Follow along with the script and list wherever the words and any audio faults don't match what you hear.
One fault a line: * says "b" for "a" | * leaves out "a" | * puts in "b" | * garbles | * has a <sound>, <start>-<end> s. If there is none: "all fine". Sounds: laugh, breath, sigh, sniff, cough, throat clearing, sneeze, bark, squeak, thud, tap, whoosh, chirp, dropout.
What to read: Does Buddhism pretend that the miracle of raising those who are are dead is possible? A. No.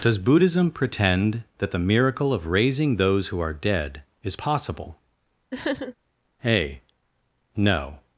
* leaves out "are"
* has a sniff, 5.5-5.9 s